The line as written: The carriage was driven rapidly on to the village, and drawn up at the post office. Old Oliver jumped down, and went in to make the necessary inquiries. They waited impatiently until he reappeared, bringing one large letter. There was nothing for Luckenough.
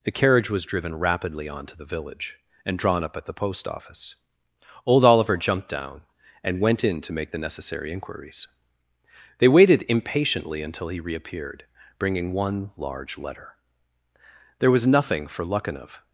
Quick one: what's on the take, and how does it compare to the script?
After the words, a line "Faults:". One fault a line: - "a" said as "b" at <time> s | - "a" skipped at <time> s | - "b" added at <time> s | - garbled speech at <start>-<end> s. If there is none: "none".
The carriage was driven rapidly on to the village, and drawn up at the post office. Old Oliver jumped down, and went in to make the necessary inquiries. They waited impatiently until he reappeared, bringing one large letter. There was nothing for Luckenough.
Faults:
none